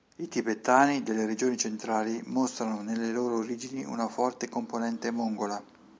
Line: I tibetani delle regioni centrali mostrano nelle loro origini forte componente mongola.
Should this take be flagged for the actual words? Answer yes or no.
yes